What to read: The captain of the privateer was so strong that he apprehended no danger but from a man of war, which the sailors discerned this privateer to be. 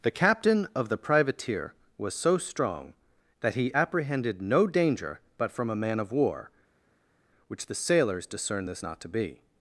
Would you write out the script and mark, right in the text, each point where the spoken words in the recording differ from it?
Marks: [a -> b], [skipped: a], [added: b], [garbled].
The captain of the privateer was so strong that he apprehended no danger but from a man of war, which the sailors discerned this [privateer -> not] to be.